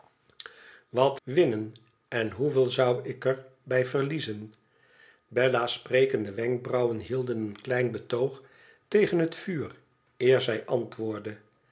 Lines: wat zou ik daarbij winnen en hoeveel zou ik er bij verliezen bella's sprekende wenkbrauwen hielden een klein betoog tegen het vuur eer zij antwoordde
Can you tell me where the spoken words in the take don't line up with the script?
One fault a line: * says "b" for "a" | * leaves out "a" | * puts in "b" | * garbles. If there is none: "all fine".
* leaves out "zou ik daarbij"